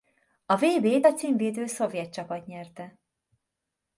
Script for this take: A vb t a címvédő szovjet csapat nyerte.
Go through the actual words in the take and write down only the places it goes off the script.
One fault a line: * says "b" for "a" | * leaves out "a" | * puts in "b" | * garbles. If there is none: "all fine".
all fine